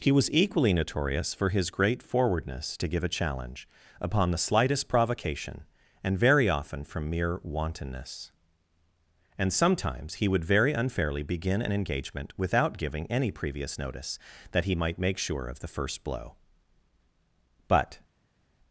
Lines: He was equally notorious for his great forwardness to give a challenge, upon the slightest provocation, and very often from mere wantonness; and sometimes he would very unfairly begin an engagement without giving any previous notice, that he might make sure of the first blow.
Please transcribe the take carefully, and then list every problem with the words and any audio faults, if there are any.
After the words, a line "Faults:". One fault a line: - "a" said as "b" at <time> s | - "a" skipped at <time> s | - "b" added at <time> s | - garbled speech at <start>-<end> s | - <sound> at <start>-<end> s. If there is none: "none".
He was equally notorious for his great forwardness to give a challenge, upon the slightest provocation, and very often from mere wantonness; and sometimes he would very unfairly begin an engagement without giving any previous notice, that he might make sure of the first blow. But
Faults:
- "But" added at 17.7 s